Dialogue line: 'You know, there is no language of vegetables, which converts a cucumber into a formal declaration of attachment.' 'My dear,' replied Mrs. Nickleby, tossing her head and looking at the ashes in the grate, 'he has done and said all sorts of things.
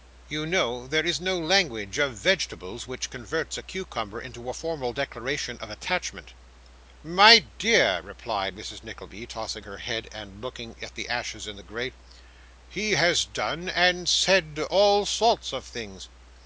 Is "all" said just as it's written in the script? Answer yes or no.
yes